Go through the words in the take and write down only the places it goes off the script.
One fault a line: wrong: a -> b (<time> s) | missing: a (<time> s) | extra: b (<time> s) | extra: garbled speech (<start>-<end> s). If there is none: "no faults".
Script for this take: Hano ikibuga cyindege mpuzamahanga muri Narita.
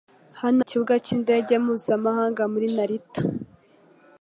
no faults